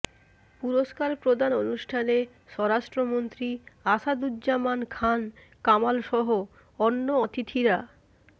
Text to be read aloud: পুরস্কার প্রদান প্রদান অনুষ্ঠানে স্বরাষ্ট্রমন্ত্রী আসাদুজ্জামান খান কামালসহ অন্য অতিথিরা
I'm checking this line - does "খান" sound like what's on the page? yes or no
yes